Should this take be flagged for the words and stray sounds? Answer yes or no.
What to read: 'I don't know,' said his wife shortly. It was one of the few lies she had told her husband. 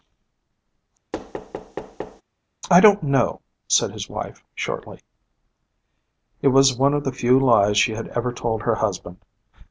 yes